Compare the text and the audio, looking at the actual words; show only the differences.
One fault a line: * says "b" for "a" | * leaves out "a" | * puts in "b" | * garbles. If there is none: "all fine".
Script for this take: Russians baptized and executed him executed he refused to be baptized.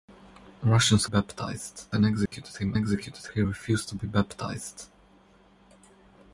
all fine